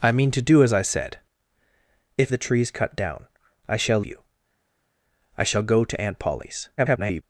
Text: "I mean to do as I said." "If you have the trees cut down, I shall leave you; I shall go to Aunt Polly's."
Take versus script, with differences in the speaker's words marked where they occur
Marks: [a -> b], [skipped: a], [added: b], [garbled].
"I mean to do as I said." "If [skipped: you have] the trees cut down, I shall [skipped: leave] you; I shall go to Aunt Polly's." [garbled]